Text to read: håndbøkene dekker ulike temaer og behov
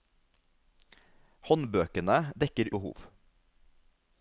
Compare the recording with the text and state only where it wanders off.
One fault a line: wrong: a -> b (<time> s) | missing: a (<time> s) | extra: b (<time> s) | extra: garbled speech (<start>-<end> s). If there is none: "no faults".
missing: ulike temaer og (2.7 s)